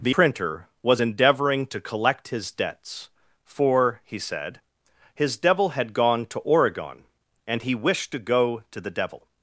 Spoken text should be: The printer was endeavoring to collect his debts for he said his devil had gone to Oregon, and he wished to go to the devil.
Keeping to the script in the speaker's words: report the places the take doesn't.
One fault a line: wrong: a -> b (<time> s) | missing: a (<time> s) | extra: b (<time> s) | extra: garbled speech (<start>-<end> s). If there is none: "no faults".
no faults